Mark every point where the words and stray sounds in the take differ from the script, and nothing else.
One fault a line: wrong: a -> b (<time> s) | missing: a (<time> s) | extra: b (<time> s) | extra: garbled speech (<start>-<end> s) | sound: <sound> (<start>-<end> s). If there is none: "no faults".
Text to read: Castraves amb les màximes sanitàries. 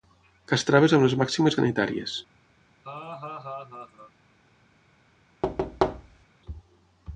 sound: laugh (2.8-4.1 s)
sound: thud (5.4-6.3 s)